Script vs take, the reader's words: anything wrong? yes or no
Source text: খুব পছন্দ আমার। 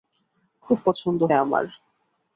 no